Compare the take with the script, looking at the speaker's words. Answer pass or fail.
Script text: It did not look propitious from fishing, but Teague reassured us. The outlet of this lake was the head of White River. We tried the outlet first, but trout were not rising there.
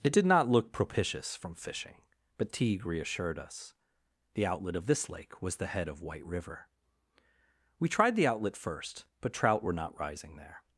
pass